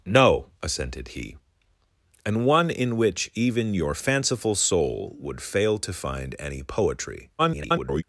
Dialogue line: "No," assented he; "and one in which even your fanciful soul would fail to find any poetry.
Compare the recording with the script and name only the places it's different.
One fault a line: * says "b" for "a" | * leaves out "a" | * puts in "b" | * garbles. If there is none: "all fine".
* garbles